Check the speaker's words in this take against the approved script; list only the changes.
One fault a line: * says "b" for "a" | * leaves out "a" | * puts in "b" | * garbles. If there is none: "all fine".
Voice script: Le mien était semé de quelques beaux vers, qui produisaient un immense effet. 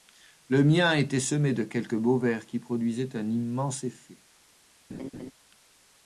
all fine